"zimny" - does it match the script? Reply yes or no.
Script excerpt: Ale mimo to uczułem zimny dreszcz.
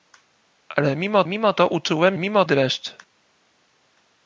no